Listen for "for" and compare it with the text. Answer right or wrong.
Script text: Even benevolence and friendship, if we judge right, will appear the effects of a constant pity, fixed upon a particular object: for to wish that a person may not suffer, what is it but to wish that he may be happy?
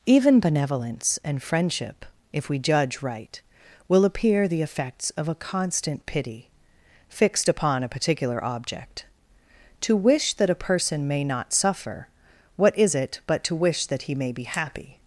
wrong